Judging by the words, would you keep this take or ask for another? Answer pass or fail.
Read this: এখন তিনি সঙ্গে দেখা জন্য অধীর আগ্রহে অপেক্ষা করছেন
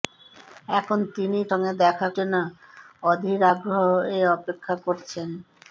pass